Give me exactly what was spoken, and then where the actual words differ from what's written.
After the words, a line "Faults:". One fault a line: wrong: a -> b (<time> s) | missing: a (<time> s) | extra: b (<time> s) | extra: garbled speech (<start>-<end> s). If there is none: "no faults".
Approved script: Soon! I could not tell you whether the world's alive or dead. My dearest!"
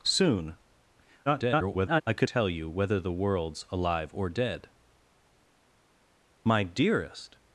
Soon! [garbled] I could tell you whether the world's alive or dead. My dearest!"
Faults:
extra: garbled speech (1.3-2.0 s)
missing: not (2.3 s)